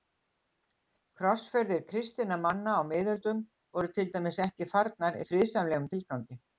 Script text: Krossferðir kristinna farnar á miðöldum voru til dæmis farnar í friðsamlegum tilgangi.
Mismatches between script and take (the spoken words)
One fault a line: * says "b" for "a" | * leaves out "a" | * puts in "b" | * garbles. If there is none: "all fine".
* says "manna" for "farnar"
* puts in "ekki"